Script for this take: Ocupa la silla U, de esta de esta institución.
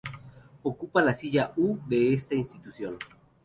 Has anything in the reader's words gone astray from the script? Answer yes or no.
yes